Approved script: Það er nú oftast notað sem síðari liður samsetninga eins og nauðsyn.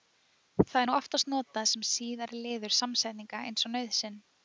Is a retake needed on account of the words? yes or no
no